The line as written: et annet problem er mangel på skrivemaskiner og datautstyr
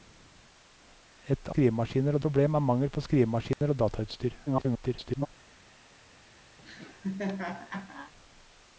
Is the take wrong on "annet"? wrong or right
wrong